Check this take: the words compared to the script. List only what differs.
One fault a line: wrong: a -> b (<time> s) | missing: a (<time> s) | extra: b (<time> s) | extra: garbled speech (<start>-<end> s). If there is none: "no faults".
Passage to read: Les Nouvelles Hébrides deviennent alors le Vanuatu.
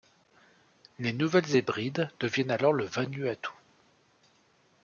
no faults